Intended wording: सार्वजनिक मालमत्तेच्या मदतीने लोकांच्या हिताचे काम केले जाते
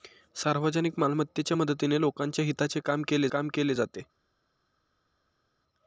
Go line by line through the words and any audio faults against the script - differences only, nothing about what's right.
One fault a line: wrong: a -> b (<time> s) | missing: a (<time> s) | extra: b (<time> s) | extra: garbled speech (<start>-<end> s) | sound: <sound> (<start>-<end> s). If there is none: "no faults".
extra: काम केले (3.3 s)